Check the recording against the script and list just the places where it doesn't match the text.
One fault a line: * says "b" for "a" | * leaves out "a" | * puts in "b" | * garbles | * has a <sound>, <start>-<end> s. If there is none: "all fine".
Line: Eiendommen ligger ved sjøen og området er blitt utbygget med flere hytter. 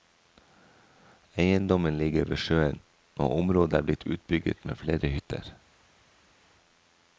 all fine